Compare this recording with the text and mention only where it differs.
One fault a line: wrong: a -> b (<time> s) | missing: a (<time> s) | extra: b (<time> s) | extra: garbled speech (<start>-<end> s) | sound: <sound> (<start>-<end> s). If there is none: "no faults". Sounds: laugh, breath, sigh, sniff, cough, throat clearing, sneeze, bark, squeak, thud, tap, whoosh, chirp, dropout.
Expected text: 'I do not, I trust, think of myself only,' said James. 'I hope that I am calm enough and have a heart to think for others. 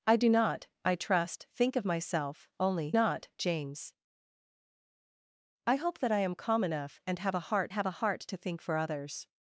wrong: said -> not (2.9 s)
extra: have a heart (7.7 s)